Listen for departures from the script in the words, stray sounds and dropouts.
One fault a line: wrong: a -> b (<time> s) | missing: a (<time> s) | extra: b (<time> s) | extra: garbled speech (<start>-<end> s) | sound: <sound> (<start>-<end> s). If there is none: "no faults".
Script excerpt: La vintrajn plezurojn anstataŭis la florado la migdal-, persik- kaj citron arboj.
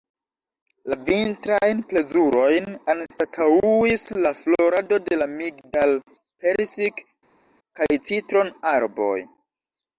extra: de (5.1 s)